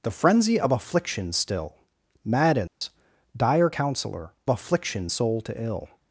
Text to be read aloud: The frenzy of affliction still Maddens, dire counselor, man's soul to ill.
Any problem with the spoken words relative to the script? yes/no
yes